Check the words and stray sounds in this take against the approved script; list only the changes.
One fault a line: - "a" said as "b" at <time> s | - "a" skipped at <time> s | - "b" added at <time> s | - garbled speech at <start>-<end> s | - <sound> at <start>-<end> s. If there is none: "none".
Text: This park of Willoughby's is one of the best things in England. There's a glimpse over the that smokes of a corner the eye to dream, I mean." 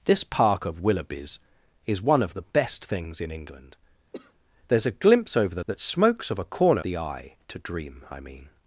- cough at 4.1-4.3 s